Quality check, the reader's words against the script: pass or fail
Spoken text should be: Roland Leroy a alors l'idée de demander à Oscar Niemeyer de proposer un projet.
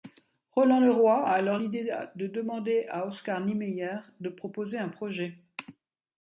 pass